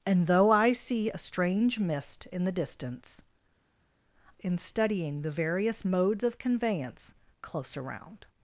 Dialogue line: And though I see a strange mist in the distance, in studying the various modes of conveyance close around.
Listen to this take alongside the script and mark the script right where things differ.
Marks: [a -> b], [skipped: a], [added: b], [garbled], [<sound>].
And though I see a strange mist in the distance, in studying the various modes of conveyance close around.